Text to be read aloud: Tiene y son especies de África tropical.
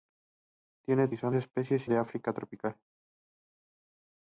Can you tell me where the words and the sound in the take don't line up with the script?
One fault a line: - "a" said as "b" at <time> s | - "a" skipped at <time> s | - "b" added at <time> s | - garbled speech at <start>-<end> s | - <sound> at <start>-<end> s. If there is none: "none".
none